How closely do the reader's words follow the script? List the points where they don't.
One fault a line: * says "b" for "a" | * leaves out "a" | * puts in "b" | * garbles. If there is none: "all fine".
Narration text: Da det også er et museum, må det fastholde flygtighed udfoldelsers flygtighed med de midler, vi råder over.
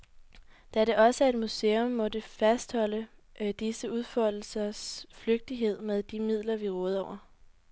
* says "disse" for "flygtighed"